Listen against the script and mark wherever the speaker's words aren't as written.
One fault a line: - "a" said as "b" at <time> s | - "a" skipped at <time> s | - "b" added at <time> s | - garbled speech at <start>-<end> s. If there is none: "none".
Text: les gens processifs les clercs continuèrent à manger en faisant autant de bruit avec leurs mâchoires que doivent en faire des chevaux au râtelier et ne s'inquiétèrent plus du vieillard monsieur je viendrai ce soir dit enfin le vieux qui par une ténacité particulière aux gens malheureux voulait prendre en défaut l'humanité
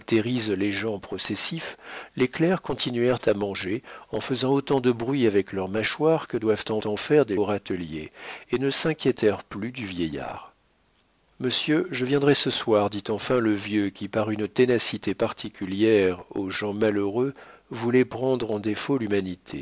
- "en" added at 6.8 s
- "chevaux" skipped at 7.4 s